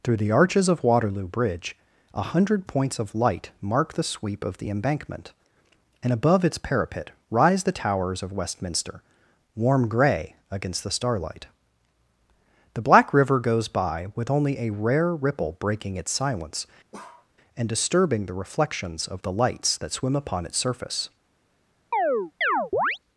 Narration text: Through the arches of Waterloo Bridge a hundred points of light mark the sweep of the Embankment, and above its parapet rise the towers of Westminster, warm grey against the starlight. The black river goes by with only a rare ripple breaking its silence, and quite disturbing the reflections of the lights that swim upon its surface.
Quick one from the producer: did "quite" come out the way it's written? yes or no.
no